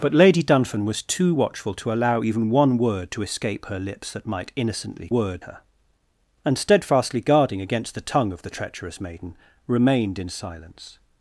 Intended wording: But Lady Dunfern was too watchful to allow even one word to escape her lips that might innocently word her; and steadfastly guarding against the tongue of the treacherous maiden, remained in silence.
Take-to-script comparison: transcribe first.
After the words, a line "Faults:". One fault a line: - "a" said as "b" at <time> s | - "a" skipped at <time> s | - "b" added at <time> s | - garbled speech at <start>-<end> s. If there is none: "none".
But Lady Dunfern was too watchful to allow even one word to escape her lips that might innocently word her; and steadfastly guarding against the tongue of the treacherous maiden, remained in silence.
Faults:
none